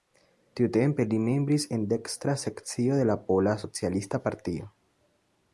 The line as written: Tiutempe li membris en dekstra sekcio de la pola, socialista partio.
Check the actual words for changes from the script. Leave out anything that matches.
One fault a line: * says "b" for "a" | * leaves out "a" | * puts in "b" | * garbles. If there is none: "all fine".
all fine